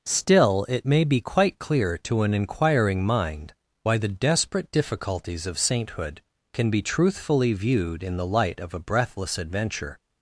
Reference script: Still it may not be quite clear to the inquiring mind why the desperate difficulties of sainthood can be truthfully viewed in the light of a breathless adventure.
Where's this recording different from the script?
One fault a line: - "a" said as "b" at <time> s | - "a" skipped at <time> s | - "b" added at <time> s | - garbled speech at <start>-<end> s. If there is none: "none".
- "not" skipped at 1.0 s
- "the" said as "an" at 2.2 s